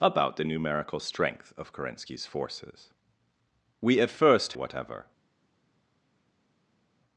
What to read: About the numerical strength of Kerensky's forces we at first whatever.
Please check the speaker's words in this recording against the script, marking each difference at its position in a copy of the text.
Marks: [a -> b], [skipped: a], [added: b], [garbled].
About the numerical strength of Kerensky's forces we at first whatever.